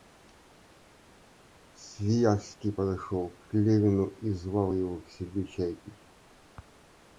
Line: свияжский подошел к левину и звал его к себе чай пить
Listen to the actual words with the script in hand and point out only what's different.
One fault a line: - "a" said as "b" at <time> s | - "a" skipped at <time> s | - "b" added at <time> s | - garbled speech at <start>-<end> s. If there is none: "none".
none